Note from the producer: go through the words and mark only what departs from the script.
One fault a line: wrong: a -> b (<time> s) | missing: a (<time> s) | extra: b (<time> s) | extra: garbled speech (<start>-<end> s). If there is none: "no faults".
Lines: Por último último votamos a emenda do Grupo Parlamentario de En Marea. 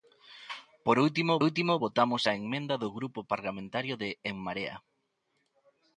no faults